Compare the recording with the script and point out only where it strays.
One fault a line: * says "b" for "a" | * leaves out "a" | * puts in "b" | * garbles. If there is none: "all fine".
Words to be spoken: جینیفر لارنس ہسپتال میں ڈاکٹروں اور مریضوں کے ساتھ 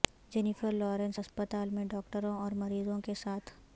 all fine